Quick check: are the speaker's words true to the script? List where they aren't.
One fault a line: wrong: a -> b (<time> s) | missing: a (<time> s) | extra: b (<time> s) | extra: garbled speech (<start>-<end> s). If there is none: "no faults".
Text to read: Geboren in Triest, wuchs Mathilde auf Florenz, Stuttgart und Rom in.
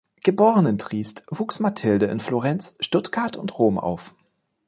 wrong: auf -> in (2.1 s)
wrong: in -> auf (3.8 s)